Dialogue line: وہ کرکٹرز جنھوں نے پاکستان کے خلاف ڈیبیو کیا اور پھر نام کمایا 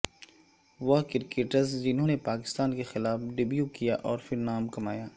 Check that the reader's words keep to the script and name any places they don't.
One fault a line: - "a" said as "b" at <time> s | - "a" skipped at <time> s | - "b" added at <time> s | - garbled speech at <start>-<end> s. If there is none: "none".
none